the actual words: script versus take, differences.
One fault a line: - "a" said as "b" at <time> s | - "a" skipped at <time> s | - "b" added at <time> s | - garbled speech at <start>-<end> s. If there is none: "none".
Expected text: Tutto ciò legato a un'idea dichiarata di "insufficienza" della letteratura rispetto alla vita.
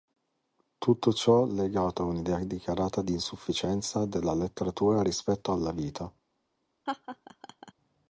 none